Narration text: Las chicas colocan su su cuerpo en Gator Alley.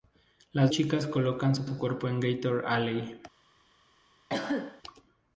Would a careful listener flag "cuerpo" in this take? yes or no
no